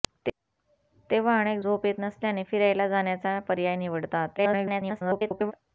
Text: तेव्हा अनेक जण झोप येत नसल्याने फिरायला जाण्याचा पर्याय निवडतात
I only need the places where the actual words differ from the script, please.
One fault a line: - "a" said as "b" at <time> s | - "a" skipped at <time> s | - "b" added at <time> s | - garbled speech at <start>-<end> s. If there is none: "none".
- "जण" skipped at 1.6 s
- garbled speech at 4.4-5.5 s